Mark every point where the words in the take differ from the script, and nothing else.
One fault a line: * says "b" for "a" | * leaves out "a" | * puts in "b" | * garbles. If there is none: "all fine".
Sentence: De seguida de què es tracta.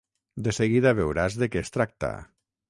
* puts in "veuràs"